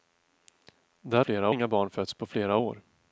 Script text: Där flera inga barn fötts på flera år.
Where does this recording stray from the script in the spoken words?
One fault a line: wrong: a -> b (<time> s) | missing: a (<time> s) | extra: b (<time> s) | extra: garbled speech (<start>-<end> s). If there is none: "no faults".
no faults